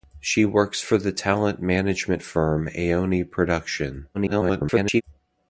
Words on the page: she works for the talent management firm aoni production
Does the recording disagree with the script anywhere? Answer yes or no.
yes